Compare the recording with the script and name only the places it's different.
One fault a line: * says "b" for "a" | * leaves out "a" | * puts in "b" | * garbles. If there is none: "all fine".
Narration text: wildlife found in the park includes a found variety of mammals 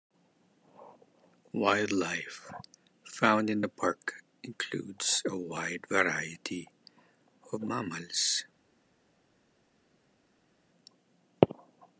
* says "wide" for "found"